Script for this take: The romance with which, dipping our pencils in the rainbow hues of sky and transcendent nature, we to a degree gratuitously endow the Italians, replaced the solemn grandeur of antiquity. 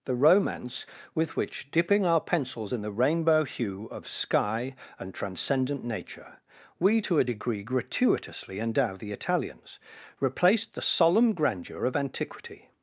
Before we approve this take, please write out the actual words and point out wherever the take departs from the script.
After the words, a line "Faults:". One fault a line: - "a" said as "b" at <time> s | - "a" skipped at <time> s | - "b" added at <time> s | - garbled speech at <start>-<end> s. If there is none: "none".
The romance with which, dipping our pencils in the rainbow hue of sky and transcendent nature, we to a degree gratuitously endow the Italians, replaced the solemn grandeur of antiquity.
Faults:
- "hues" said as "hue" at 3.4 s